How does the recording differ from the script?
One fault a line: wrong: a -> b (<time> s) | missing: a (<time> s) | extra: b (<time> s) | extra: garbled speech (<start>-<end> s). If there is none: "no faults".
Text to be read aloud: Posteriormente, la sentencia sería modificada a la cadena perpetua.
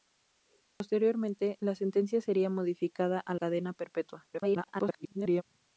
missing: la (3.4 s)
extra: garbled speech (4.3-5.4 s)